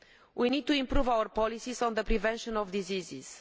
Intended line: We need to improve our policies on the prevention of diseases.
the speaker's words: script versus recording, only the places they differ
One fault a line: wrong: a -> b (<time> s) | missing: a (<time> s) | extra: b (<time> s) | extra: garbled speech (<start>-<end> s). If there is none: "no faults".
no faults